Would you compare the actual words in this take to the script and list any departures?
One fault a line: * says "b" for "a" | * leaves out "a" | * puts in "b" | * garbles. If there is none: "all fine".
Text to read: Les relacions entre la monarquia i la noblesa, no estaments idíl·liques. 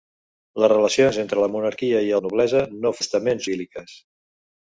all fine